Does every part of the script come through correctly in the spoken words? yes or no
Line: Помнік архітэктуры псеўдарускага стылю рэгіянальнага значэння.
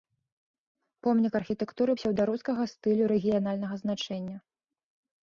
yes